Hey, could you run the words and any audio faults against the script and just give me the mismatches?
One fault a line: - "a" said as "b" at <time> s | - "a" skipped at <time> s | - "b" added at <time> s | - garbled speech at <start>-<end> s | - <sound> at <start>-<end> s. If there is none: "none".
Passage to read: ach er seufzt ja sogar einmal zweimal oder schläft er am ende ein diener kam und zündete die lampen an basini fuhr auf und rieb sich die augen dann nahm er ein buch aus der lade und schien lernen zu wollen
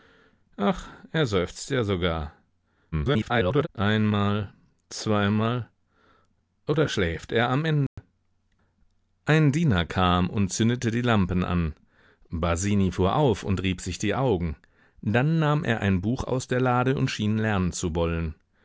- garbled speech at 2.9-3.7 s
- dropout at 7.9-8.0 s